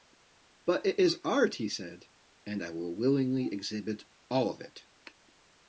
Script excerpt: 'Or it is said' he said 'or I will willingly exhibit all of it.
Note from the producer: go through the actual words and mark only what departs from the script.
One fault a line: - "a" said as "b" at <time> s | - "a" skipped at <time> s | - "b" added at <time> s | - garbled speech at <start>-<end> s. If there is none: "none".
- "Or" said as "But" at 0.7 s
- "said" said as "art" at 1.2 s
- "or" said as "and" at 2.4 s